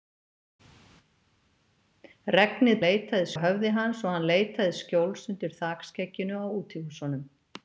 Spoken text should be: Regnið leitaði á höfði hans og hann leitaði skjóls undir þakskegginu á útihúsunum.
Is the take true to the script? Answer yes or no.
yes